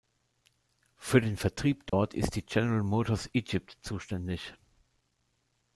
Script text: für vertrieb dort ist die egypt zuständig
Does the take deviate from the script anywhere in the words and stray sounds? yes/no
yes